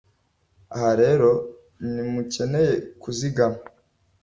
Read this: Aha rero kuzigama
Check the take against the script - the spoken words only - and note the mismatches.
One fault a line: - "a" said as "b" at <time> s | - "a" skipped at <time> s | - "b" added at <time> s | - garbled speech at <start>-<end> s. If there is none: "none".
- "ntimukeneye" added at 1.9 s